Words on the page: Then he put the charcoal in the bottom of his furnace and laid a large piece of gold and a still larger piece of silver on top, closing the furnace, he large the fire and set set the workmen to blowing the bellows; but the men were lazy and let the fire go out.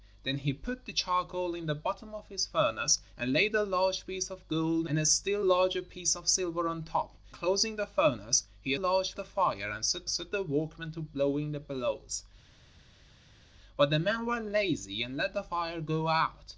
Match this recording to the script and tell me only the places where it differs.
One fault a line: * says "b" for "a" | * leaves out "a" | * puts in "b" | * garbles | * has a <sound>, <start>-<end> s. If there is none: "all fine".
all fine